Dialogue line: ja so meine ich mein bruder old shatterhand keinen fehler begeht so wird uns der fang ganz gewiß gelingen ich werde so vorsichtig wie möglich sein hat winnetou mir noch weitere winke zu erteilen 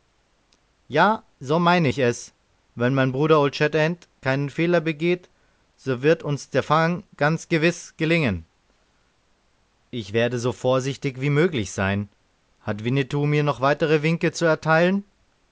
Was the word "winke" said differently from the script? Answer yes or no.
no